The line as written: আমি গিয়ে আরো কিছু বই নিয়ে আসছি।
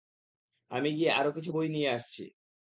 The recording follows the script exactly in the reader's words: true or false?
true